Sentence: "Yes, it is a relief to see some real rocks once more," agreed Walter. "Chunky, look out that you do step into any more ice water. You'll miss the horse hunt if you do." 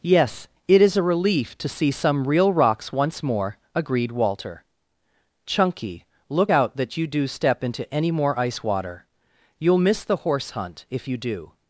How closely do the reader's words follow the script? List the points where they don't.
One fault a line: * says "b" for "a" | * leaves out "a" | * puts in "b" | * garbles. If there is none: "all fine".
all fine